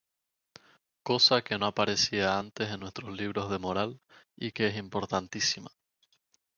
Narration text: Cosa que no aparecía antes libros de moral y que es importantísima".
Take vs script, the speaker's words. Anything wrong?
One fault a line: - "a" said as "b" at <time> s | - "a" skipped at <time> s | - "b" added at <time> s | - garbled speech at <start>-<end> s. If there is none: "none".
- "en nuestros" added at 2.7 s